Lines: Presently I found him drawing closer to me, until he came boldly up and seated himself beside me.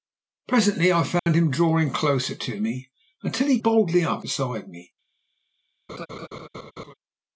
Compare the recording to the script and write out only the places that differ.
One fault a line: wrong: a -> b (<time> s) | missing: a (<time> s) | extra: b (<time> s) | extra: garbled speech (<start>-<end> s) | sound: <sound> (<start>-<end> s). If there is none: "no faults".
sound: dropout (1.2-1.3 s)
missing: came (3.6 s)
missing: and seated himself (4.2 s)
sound: laugh (5.9-6.9 s)